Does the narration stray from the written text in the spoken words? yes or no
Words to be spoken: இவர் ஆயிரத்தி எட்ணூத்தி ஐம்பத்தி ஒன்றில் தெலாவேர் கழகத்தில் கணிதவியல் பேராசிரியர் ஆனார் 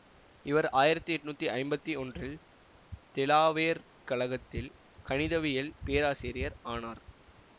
no